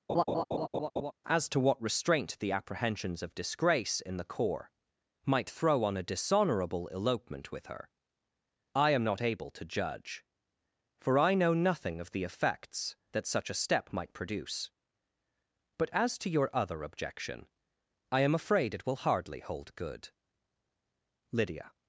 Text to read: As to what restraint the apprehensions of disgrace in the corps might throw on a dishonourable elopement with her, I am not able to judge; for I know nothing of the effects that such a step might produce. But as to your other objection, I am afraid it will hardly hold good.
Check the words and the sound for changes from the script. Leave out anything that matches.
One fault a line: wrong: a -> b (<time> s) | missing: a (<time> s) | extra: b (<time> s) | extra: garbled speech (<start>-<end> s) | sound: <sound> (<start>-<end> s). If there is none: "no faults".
sound: laugh (0.1-1.1 s)
extra: Lydia (21.3 s)